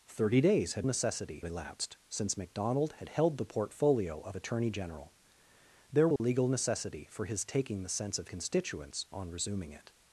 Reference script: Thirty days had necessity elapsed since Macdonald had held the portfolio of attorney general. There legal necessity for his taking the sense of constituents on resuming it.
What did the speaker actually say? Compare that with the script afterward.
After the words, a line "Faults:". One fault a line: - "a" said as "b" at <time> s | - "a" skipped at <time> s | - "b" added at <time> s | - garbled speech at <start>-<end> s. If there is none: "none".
Thirty days had necessity elapsed since Macdonald had held the portfolio of attorney general. There legal necessity for his taking the sense of constituents on resuming it.
Faults:
none